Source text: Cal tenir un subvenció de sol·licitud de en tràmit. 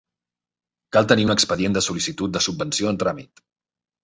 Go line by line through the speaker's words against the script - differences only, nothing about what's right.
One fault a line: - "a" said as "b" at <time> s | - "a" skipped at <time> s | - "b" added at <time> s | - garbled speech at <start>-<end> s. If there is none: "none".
- "subvenció" said as "expedient" at 1.3 s
- "subvenció" added at 2.5 s